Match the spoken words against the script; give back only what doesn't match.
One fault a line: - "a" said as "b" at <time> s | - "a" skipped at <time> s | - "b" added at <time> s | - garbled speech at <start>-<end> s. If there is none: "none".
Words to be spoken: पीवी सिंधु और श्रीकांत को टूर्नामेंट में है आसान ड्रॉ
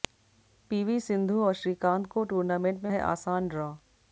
none